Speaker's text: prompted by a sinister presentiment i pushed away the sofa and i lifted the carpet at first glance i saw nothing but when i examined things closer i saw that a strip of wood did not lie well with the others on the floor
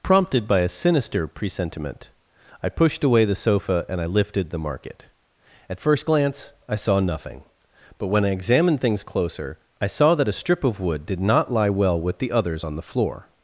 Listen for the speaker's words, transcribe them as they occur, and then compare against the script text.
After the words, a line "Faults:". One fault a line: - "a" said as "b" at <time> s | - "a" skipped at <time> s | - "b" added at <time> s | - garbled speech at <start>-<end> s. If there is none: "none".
prompted by a sinister presentiment i pushed away the sofa and i lifted the market at first glance i saw nothing but when i examined things closer i saw that a strip of wood did not lie well with the others on the floor
Faults:
- "carpet" said as "market" at 4.6 s